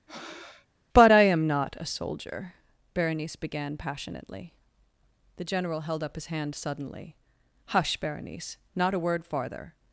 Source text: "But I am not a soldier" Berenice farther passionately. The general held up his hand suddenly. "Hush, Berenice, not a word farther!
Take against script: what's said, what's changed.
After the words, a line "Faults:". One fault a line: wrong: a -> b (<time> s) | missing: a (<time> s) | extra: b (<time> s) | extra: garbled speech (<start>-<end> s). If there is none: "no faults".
"But I am not a soldier" Berenice began passionately. The general held up his hand suddenly. "Hush, Berenice, not a word farther!
Faults:
wrong: farther -> began (3.4 s)